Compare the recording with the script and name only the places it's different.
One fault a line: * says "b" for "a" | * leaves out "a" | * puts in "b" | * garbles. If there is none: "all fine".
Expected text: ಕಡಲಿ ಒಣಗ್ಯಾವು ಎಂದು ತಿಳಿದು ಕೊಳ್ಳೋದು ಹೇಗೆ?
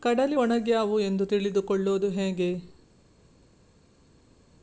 all fine